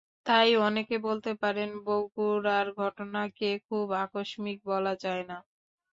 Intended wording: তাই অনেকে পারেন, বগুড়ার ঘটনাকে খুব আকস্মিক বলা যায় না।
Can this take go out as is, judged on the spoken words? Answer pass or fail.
fail